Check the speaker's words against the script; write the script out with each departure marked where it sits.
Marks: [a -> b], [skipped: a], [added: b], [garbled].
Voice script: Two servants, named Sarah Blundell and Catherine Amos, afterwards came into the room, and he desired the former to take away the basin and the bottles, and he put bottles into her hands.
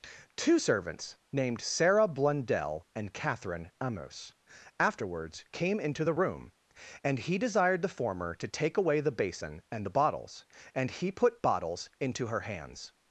Two servants, named Sarah Blundell and Catherine Amos, afterwards came into the room, and he desired the former to take away the basin and the bottles, and he put bottles into her hands.